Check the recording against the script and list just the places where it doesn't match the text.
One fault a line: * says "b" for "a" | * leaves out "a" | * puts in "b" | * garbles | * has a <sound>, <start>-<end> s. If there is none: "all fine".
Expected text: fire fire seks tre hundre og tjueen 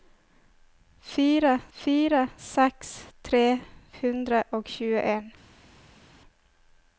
all fine